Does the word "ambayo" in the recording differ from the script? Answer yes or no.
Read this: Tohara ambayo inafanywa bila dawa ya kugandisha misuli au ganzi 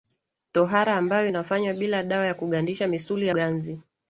no